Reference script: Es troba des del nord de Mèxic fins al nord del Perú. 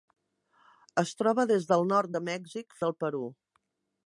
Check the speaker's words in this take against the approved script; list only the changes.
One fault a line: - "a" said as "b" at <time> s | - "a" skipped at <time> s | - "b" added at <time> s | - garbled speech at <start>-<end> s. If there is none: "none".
- "fins al nord" skipped at 2.8 s